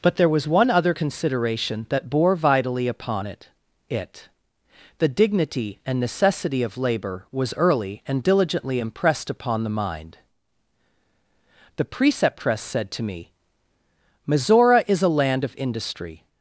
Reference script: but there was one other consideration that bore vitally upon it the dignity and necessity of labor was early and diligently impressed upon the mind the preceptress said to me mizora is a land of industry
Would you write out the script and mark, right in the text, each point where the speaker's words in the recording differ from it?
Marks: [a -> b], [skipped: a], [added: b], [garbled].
but there was one other consideration that bore vitally upon it [added: it] the dignity and necessity of labor was early and diligently impressed upon the mind the preceptress said to me mizora is a land of industry